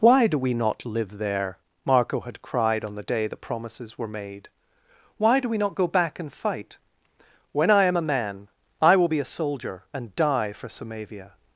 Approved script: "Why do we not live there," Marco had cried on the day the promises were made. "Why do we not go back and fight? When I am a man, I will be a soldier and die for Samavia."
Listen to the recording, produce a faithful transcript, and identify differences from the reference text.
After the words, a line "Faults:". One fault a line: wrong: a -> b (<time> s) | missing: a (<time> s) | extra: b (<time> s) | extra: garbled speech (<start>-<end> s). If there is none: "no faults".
"Why do we not live there," Marco had cried on the day the promises were made. "Why do we not go back and fight? When I am a man, I will be a soldier and die for Samavia."
Faults:
no faults